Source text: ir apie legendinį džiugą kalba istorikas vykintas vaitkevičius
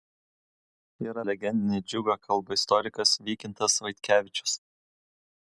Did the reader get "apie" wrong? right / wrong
wrong